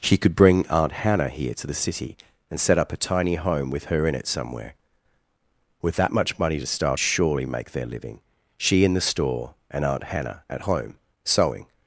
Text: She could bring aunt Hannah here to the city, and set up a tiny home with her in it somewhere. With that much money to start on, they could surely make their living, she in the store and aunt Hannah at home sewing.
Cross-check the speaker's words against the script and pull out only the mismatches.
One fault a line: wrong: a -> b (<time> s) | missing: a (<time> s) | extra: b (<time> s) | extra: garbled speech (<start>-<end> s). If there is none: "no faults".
missing: on they could (7.0 s)